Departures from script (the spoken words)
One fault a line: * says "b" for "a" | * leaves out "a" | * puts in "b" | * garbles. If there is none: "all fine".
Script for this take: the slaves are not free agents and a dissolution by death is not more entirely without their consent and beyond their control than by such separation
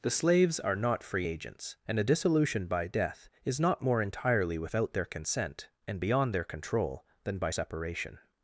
* leaves out "such"